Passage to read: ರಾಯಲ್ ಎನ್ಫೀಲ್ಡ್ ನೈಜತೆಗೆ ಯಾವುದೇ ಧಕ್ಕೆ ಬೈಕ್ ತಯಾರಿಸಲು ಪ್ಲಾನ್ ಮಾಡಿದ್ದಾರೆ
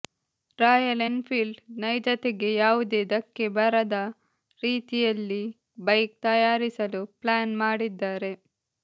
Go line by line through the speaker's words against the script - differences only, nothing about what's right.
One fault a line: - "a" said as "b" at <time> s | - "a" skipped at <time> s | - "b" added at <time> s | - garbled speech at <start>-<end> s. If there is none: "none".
- "ಬರದ ರೀತಿಯಲ್ಲಿ" added at 3.6 s